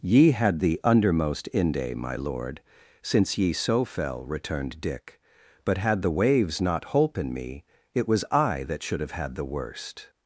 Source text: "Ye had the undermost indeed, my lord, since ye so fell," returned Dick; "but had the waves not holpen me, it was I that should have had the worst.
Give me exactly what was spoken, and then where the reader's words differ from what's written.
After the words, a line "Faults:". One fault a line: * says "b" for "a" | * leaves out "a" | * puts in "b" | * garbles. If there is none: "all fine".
"Ye had the undermost inde, my lord, since ye so fell," returned Dick; "but had the waves not holpen me, it was I that should have had the worst.
Faults:
* says "inde" for "indeed"